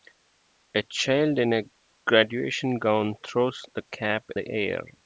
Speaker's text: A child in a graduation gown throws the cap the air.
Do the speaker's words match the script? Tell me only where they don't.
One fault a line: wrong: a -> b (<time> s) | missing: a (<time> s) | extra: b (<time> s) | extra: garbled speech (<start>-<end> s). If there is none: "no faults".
no faults